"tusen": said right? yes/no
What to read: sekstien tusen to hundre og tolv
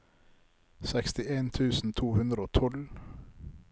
yes